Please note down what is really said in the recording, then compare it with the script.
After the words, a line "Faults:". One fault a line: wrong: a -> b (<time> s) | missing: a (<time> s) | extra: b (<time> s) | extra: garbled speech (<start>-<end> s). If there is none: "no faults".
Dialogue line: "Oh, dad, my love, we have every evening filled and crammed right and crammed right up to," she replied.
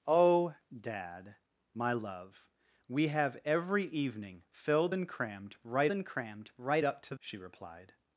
"Oh, dad, my love, we have every evening filled and crammed right and crammed right up to," she replied.
Faults:
no faults